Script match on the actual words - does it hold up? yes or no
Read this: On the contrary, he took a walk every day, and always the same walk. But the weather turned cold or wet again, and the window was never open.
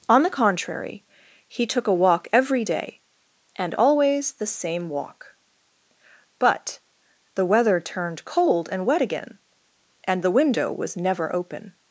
no